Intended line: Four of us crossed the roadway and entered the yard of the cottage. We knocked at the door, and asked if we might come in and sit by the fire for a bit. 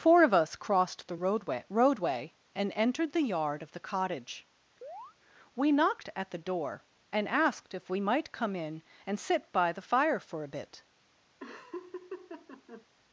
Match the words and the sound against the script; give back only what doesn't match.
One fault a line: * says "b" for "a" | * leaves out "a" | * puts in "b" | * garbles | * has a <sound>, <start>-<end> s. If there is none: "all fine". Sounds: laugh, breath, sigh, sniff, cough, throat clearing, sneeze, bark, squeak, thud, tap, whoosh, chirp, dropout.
* puts in "roadway"
* has a chirp, 4.8-5.2 s
* has a laugh, 11.4-12.9 s